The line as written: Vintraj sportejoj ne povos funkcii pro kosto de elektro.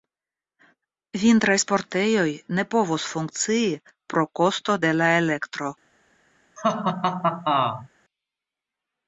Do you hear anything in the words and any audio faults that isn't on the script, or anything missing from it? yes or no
yes